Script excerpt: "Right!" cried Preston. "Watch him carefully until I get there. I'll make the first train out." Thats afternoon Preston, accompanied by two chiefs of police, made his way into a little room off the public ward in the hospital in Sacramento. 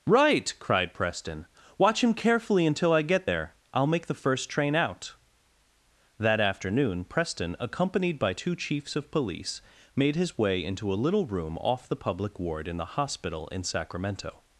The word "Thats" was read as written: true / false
false